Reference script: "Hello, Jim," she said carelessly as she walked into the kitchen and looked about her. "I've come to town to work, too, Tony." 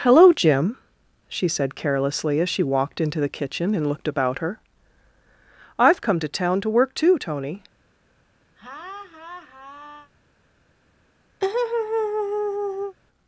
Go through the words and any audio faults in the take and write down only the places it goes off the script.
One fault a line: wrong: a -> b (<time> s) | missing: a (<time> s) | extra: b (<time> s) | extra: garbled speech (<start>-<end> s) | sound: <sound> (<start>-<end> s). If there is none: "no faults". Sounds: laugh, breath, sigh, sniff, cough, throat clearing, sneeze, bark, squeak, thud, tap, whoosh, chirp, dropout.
sound: laugh (8.6-10.1 s)
sound: laugh (11.4-13.0 s)